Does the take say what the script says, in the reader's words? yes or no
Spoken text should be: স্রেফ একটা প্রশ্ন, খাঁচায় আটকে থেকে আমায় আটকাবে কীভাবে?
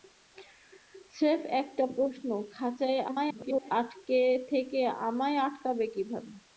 no